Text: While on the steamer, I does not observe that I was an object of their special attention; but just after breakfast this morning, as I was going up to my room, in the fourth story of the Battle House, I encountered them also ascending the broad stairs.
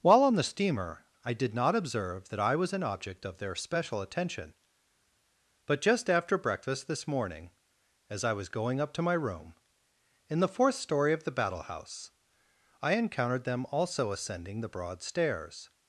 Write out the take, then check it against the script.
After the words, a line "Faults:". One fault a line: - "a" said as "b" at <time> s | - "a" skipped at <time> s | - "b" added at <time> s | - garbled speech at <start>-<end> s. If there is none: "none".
While on the steamer, I did not observe that I was an object of their special attention; but just after breakfast this morning, as I was going up to my room, in the fourth story of the Battle House, I encountered them also ascending the broad stairs.
Faults:
- "does" said as "did" at 1.3 s